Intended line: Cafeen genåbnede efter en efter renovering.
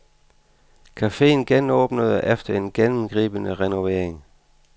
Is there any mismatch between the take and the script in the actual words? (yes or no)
yes